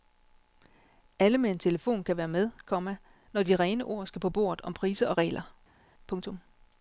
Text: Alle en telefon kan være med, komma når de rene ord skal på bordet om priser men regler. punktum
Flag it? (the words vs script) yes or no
yes